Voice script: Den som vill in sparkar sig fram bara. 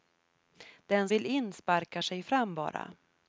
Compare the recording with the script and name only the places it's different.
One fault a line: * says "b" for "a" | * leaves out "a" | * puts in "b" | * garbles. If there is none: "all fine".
* leaves out "som"